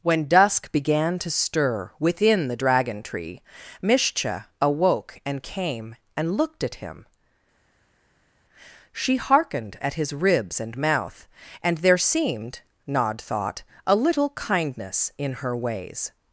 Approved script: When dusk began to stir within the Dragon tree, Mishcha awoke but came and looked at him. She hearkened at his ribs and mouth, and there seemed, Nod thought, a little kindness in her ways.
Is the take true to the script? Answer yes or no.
no